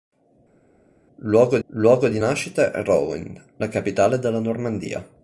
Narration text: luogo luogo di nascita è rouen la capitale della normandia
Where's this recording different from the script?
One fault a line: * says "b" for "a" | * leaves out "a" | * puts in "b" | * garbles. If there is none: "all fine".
all fine